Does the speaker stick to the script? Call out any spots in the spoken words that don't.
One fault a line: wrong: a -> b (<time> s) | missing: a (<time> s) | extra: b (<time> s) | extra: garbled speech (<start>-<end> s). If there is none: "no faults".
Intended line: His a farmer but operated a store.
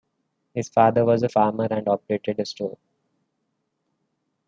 extra: father was (0.7 s)
wrong: but -> and (1.7 s)